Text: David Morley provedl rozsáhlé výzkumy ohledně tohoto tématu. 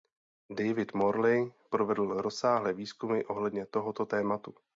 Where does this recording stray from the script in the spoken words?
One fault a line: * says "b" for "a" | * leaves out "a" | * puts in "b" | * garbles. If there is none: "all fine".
all fine